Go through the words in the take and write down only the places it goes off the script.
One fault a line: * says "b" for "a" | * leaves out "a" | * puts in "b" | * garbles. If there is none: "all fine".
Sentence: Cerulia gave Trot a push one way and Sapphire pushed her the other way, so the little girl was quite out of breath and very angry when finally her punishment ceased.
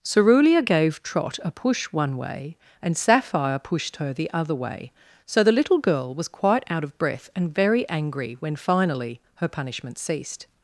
all fine